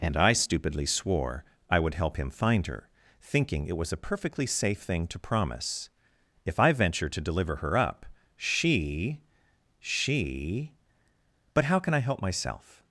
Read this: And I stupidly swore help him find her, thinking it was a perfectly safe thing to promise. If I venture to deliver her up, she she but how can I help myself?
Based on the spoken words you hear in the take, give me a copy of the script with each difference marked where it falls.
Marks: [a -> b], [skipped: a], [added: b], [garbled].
And I stupidly swore [added: I would] help him find her, thinking it was a perfectly safe thing to promise. If I venture to deliver her up, she she but how can I help myself?